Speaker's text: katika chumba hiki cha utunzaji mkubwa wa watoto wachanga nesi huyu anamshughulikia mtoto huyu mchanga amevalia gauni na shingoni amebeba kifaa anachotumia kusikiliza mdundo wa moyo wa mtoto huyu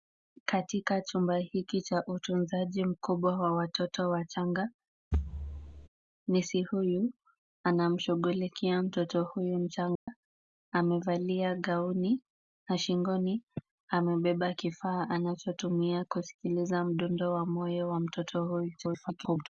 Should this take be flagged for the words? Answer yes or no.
yes